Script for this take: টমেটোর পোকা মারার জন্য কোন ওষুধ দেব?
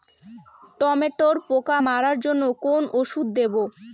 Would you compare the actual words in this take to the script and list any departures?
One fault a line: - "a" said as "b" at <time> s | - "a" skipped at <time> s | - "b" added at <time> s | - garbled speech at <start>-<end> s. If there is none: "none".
none